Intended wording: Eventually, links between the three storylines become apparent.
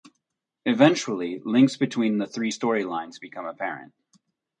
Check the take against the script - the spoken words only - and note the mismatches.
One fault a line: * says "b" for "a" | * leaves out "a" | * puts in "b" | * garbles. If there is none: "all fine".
all fine